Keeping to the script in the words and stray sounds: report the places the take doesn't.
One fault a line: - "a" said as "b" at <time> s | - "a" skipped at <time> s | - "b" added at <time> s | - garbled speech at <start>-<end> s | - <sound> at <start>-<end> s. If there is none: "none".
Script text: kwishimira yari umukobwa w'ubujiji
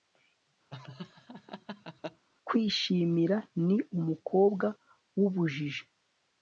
- laugh at 0.7-2.3 s
- "yari" said as "ni" at 3.6 s